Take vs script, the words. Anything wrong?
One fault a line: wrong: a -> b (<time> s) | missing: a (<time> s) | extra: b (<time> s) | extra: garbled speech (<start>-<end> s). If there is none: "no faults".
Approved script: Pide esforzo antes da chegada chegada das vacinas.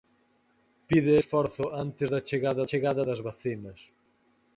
no faults